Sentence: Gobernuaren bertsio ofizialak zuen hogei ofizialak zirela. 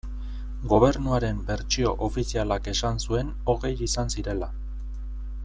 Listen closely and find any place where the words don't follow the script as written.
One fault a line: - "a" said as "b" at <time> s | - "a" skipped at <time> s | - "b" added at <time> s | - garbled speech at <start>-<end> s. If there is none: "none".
- "esan" added at 2.7 s
- "ofizialak" said as "izan" at 3.9 s